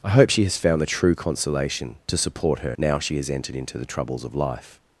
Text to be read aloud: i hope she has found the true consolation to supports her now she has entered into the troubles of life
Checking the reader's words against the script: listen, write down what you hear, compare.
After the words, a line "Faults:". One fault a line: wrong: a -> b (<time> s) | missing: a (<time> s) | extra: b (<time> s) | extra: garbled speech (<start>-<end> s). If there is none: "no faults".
i hope she has found the true consolation to support her now she has entered into the troubles of life
Faults:
wrong: supports -> support (2.2 s)